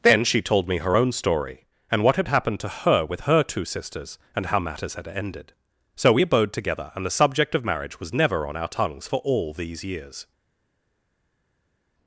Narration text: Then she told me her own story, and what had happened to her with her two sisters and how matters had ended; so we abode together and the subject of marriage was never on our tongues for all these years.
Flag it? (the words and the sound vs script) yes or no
no